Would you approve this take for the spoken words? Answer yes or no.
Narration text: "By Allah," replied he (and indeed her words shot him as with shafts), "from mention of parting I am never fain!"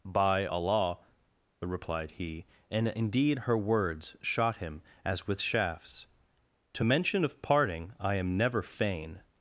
no